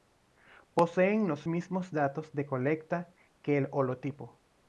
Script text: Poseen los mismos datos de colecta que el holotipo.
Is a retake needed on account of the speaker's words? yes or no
no